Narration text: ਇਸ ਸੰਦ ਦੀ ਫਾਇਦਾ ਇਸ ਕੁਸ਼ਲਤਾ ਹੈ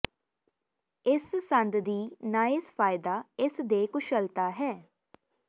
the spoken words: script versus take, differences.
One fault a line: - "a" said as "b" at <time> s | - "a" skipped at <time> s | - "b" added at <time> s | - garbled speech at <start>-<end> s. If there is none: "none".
- "ਨਾਇਸ" added at 2.2 s
- "ਦੇ" added at 3.6 s